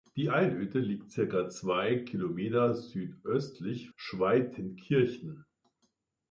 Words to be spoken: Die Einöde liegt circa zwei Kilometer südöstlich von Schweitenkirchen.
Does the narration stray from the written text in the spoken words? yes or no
yes